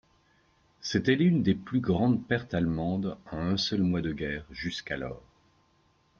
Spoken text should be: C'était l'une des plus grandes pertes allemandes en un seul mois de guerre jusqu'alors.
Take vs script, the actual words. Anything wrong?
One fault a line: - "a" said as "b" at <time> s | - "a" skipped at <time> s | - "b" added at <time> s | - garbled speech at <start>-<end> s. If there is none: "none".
none